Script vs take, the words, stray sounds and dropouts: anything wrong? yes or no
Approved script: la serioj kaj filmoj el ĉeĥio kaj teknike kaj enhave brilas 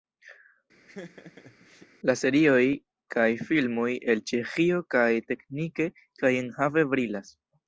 yes